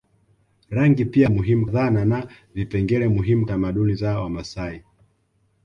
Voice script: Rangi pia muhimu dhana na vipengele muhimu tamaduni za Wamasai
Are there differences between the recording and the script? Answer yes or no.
no